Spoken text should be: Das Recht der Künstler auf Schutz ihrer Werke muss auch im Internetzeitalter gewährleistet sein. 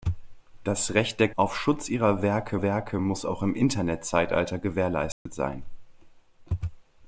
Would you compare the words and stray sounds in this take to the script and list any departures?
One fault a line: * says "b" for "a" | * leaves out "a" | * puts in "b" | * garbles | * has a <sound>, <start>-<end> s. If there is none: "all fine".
* leaves out "Künstler"
* puts in "Werke"
* has a dropout, 5.1-5.3 s